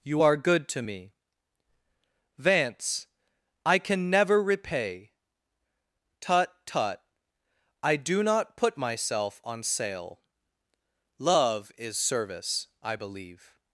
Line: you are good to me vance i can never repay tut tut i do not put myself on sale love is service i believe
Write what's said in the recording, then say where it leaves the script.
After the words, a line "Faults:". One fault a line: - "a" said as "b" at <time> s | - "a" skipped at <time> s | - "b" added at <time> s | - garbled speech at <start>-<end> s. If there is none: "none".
you are good to me vance i can never repay tut tut i do not put myself on sale love is service i believe
Faults:
none